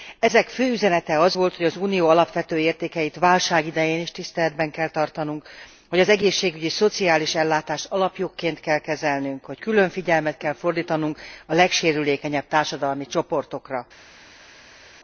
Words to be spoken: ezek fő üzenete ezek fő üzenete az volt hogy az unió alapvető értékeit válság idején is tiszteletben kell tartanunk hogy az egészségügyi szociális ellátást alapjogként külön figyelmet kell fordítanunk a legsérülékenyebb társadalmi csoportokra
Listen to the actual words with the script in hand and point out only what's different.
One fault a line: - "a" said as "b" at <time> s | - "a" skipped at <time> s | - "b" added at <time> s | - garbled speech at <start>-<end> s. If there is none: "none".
- "ezek fő üzenete" skipped at 1.2 s
- "kell kezelnünk hogy" added at 8.6 s